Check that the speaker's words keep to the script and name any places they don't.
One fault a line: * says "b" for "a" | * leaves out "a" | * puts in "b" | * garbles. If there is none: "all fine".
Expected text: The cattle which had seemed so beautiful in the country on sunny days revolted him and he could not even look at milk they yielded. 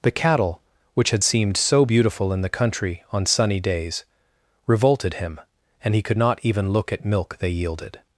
all fine